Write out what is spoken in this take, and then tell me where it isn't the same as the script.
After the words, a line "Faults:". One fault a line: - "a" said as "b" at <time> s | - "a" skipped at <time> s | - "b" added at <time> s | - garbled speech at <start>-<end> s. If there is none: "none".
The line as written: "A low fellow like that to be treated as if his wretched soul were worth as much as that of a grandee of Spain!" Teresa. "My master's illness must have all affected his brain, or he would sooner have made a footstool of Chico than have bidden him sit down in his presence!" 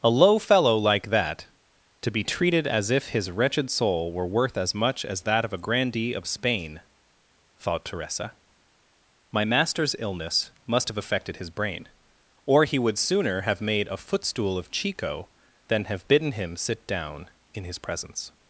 "A low fellow like that to be treated as if his wretched soul were worth as much as that of a grandee of Spain!" thought Teresa. "My master's illness must have affected his brain, or he would sooner have made a footstool of Chico than have bidden him sit down in his presence!"
Faults:
- "thought" added at 7.6 s
- "all" skipped at 11.0 s